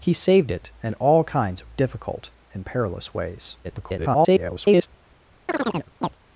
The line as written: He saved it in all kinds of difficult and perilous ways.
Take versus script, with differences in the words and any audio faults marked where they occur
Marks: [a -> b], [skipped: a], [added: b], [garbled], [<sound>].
He saved it in all kinds of difficult and perilous ways. [garbled] [chirp]